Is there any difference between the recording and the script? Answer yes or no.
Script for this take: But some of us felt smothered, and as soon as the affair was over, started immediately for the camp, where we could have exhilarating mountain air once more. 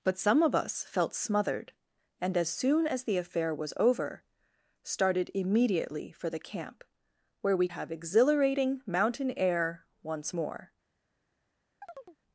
yes